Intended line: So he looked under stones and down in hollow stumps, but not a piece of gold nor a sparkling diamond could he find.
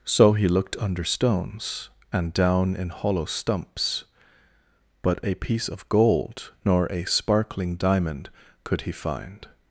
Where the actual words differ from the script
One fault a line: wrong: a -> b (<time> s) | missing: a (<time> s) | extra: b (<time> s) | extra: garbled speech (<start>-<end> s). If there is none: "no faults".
missing: not (5.2 s)